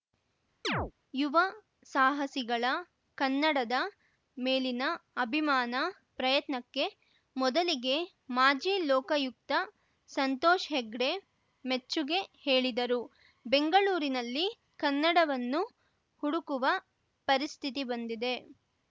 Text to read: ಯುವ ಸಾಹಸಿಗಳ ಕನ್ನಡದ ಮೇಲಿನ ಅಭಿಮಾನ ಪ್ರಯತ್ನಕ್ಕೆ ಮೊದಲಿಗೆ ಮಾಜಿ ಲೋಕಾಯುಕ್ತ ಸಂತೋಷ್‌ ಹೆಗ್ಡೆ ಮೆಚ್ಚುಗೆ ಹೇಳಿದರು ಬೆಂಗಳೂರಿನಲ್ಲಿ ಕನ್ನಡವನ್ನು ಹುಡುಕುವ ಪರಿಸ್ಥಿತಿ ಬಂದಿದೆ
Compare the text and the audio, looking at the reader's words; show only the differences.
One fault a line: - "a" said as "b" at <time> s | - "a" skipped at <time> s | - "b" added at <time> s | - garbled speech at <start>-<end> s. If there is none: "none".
none